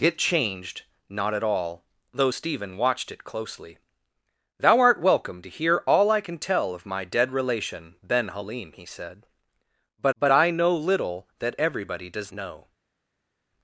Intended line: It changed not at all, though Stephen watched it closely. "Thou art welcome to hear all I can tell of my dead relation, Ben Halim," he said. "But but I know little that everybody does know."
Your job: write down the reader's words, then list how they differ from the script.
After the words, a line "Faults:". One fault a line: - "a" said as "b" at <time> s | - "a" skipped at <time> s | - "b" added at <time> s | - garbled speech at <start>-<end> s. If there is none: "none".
It changed not at all, though Stephen watched it closely. "Thou art welcome to hear all I can tell of my dead relation, Ben Halim," he said. "But but I know little that everybody does know."
Faults:
none